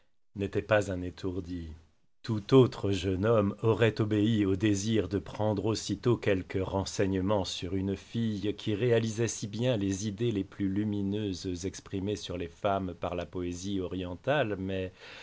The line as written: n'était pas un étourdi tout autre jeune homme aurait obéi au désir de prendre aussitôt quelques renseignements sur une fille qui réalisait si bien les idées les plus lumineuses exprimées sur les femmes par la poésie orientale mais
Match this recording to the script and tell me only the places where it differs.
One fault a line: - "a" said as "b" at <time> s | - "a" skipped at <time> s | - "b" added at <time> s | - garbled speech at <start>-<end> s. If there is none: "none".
none